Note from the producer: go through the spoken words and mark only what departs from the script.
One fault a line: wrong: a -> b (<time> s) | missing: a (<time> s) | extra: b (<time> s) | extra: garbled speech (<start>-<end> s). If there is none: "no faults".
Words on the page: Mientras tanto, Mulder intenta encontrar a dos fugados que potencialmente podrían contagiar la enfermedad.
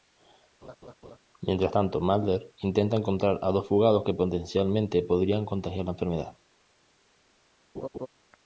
no faults